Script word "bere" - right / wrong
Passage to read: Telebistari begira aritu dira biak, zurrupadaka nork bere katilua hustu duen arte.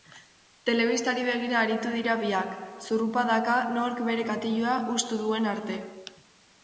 right